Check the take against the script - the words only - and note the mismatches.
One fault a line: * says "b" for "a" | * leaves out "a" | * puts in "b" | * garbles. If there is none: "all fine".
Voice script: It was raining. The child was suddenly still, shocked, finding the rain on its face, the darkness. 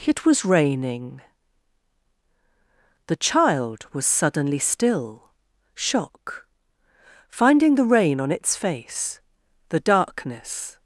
* says "shock" for "shocked"